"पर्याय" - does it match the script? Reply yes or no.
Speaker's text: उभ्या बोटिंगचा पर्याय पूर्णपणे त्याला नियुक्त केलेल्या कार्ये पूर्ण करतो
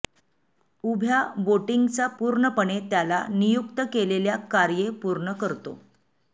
no